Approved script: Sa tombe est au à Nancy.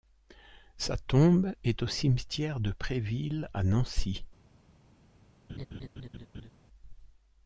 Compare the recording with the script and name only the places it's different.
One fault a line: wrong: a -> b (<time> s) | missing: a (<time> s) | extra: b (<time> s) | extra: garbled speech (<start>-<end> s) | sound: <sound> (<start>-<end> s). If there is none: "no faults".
extra: cimetière de Préville (1.9 s)
sound: laugh (5.5-6.5 s)